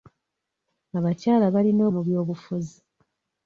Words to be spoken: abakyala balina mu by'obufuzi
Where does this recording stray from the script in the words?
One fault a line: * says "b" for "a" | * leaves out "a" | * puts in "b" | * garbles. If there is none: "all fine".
all fine